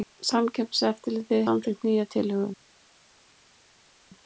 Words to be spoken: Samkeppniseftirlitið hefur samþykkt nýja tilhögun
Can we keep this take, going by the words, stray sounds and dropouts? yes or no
no